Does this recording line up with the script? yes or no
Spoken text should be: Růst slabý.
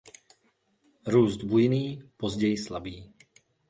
no